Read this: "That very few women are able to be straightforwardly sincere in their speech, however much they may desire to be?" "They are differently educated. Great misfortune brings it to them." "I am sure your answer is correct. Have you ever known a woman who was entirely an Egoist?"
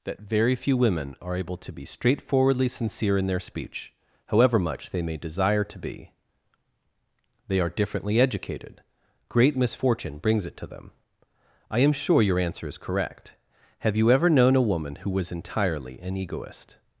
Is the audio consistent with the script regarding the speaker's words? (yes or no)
yes